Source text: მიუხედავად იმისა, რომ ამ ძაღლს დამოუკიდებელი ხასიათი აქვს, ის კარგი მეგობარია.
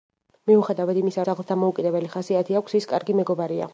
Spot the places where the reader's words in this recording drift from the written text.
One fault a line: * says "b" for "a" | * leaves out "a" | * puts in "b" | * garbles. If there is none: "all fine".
* leaves out "რომ ამ"